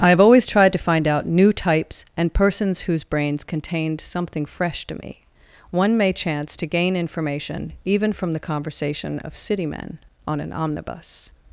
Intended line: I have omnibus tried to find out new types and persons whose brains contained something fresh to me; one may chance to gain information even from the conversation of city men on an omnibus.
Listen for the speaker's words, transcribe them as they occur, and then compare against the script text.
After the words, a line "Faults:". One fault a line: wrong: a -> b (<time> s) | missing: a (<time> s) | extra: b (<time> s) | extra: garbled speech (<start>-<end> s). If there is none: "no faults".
I have always tried to find out new types and persons whose brains contained something fresh to me; one may chance to gain information even from the conversation of city men on an omnibus.
Faults:
wrong: omnibus -> always (0.2 s)